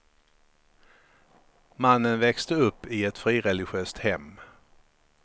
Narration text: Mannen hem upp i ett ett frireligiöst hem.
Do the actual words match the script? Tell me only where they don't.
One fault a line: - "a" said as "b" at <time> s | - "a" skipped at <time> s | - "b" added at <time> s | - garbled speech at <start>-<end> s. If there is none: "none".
- "hem" said as "växte" at 2.2 s
- "ett" skipped at 3.2 s